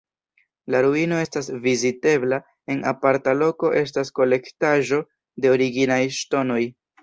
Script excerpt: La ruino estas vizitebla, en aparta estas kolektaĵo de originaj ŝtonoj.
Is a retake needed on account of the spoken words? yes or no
yes